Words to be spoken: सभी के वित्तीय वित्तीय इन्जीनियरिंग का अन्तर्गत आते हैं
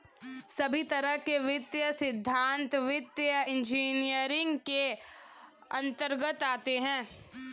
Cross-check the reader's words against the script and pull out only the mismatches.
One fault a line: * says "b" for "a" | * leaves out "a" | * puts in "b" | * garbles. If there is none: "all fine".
* puts in "तरह"
* puts in "सिद्धान्त"
* says "के" for "का"